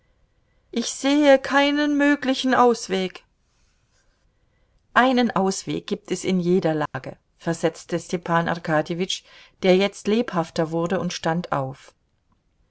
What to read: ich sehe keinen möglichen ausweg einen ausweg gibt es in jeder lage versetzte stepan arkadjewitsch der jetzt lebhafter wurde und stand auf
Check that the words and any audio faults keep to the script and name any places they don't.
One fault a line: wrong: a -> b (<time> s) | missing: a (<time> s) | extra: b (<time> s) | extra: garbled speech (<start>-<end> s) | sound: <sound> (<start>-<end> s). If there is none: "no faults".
sound: dropout (6.9-6.9 s)